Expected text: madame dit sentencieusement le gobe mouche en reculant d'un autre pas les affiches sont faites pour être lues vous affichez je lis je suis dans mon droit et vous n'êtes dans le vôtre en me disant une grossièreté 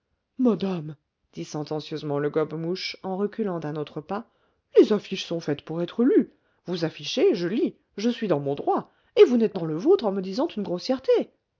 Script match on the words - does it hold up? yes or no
yes